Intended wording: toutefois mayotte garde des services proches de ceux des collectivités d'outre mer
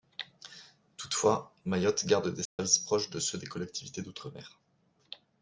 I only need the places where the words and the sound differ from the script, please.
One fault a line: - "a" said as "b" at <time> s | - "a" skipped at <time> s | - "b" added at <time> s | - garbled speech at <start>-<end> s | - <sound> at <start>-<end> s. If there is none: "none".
- dropout at 2.5-2.6 s